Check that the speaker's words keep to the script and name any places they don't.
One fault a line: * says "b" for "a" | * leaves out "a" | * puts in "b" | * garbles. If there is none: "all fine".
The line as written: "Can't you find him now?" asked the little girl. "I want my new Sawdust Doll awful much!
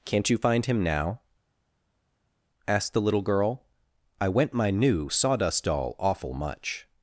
* says "went" for "want"